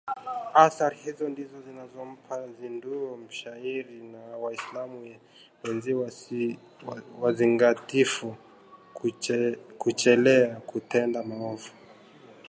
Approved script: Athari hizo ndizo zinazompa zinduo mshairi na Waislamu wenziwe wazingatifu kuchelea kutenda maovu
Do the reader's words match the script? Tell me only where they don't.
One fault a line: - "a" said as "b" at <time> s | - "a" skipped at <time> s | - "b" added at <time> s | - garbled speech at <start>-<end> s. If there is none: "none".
none